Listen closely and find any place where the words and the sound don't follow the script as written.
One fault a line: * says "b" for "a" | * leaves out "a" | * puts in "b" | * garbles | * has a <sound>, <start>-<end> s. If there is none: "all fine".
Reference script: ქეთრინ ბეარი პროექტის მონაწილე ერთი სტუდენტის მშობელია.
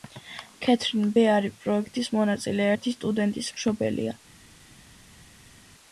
all fine